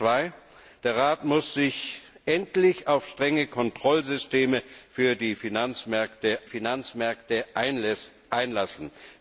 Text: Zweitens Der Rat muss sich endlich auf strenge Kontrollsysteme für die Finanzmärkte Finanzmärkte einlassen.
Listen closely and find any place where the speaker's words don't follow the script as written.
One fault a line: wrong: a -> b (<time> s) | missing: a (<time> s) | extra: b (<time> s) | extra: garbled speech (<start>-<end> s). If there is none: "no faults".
no faults